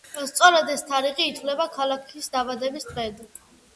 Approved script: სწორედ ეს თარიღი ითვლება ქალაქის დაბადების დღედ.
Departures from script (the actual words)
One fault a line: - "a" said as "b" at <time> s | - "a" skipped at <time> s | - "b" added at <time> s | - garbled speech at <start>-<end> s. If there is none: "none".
none